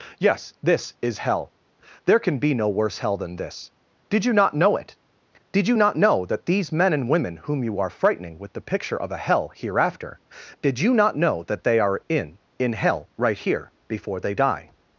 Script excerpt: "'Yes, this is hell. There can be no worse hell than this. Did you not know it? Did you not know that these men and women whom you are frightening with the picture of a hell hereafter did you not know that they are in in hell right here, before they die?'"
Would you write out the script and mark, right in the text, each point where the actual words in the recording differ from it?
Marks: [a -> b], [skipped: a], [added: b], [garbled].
"'Yes, this is hell. There can be no worse hell than this. Did you not know it? Did you not know that these men and women whom you are frightening with the picture of a hell hereafter did you not know that they are in in hell right here, before they die?'"